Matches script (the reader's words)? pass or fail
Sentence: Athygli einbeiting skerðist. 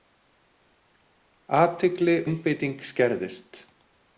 pass